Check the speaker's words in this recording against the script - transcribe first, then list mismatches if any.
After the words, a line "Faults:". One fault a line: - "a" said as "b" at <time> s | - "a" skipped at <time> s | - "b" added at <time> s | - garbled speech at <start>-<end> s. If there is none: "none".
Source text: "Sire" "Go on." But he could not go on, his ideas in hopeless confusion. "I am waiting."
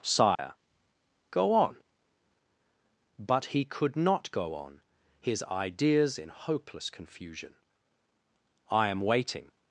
"Sire" "Go on." But he could not go on, his ideas in hopeless confusion. "I am waiting."
Faults:
none